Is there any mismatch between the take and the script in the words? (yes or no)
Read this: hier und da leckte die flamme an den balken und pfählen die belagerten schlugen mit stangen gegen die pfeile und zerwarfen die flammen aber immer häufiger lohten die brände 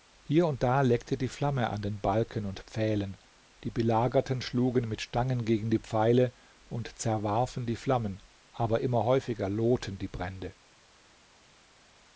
no